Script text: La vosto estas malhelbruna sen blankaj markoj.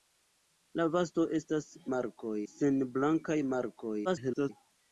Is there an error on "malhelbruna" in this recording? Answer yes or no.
yes